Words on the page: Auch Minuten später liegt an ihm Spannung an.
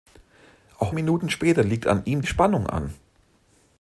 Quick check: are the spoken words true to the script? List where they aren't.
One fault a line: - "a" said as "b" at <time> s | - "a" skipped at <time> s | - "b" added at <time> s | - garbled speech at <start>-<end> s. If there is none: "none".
none